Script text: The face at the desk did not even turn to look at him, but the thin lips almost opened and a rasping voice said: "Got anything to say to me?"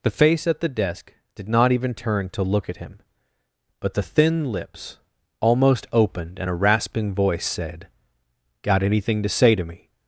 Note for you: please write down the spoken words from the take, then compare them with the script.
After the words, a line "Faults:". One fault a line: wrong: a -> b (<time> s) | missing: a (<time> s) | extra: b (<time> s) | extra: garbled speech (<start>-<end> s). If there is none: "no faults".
The face at the desk did not even turn to look at him, but the thin lips almost opened and a rasping voice said: "Got anything to say to me?"
Faults:
no faults